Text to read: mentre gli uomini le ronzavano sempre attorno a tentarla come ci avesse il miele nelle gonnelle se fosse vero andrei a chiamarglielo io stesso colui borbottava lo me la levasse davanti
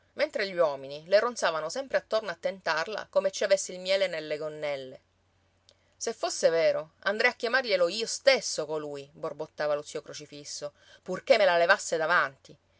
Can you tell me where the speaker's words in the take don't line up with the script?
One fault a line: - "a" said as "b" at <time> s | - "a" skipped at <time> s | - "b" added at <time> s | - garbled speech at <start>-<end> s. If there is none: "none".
- "zio crocifisso purché" added at 9.8 s